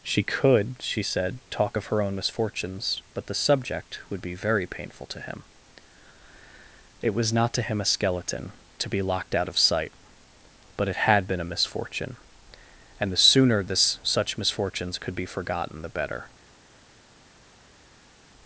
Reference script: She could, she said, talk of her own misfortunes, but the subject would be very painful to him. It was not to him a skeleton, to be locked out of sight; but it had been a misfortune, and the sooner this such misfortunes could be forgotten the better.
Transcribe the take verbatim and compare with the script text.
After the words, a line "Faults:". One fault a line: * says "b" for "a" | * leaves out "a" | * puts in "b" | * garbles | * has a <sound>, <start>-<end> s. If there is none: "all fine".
She could, she said, talk of her own misfortunes, but the subject would be very painful to him. It was not to him a skeleton, to be locked out of sight; but it had been a misfortune, and the sooner this such misfortunes could be forgotten the better.
Faults:
all fine